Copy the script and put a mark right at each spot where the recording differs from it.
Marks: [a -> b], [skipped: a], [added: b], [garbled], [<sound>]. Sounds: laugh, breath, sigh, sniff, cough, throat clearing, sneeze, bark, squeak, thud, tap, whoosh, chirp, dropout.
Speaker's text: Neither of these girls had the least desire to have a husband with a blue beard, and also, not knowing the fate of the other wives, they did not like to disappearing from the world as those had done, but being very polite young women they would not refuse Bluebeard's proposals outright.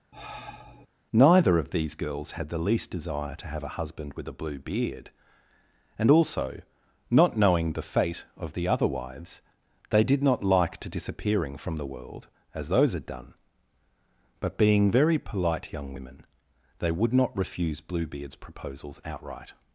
[sigh] Neither of these girls had the least desire to have a husband with a blue beard, and also, not knowing the fate of the other wives, they did not like to disappearing from the world as those had done, but being very polite young women they would not refuse Bluebeard's proposals outright.